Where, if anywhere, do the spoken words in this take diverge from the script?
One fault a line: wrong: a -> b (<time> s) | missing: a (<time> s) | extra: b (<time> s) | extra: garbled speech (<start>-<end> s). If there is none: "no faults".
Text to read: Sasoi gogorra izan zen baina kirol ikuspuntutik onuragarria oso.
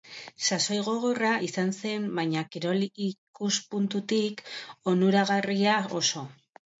no faults